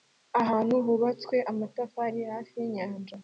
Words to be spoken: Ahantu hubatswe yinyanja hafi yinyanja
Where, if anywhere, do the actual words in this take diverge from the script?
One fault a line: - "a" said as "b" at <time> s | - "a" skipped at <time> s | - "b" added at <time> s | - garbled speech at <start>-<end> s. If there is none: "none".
- "yinyanja" said as "amatafari" at 1.5 s